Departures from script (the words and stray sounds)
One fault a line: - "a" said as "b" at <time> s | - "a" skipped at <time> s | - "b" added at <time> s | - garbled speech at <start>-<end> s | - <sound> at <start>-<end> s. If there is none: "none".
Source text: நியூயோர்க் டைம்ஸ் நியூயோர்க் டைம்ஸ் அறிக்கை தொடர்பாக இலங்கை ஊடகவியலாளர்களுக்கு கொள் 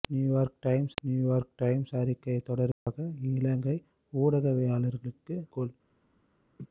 - dropout at 2.7-2.9 s
- laugh at 6.6-6.7 s